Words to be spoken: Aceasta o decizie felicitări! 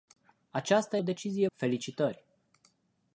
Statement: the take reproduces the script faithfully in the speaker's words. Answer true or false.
true